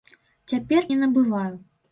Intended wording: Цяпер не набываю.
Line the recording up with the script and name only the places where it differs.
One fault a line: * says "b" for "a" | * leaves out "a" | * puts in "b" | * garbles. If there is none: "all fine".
all fine